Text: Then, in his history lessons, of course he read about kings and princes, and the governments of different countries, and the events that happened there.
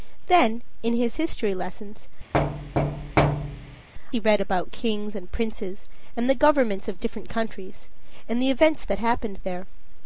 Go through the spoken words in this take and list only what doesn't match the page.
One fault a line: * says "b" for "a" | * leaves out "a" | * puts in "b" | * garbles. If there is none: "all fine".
* leaves out "of course"